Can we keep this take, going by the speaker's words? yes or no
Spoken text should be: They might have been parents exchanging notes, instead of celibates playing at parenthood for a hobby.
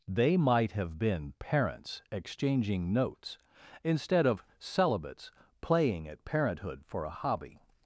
yes